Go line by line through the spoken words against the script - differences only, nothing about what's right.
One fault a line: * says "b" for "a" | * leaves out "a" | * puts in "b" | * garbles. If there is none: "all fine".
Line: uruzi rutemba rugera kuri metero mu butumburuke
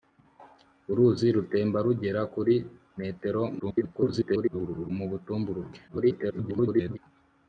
* garbles
* garbles